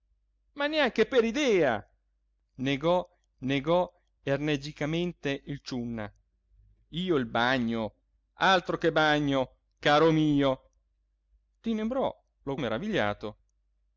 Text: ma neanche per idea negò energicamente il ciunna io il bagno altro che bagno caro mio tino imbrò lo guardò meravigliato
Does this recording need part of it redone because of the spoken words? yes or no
yes